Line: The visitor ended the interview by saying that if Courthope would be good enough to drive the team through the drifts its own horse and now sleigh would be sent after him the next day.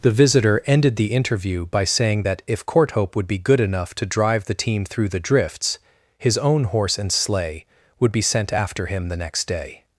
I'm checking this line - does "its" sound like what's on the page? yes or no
no